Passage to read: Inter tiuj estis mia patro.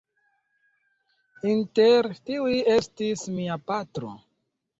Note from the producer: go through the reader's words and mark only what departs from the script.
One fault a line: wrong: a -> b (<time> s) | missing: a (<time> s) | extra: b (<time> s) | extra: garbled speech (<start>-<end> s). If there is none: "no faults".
no faults